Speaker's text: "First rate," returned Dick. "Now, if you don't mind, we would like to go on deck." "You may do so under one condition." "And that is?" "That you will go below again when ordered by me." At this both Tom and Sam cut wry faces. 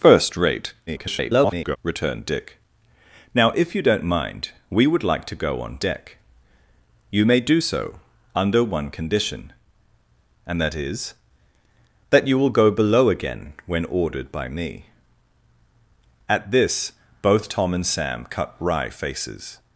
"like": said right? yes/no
yes